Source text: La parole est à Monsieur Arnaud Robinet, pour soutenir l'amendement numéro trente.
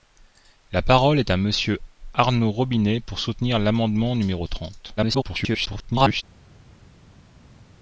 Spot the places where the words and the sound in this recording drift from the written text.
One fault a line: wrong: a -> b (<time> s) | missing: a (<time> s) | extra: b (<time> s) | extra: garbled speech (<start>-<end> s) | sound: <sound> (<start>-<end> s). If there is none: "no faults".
extra: garbled speech (5.0-6.2 s)